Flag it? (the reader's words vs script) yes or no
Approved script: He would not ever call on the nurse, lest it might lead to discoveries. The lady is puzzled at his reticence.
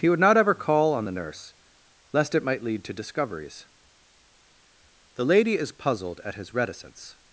no